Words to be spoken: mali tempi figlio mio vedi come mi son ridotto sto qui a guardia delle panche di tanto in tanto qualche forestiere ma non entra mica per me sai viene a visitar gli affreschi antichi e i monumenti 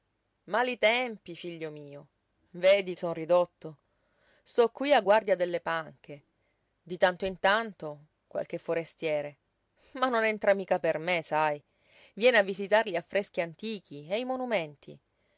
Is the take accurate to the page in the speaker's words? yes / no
no